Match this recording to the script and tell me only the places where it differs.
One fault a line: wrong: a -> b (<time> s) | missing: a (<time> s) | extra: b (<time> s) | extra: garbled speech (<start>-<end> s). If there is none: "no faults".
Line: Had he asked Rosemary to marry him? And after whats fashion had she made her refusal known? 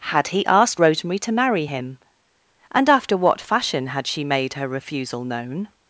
wrong: whats -> what (3.2 s)